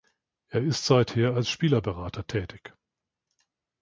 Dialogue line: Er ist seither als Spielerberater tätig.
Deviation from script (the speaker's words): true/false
false